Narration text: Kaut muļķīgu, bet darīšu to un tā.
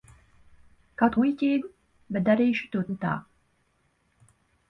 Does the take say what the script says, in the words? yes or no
yes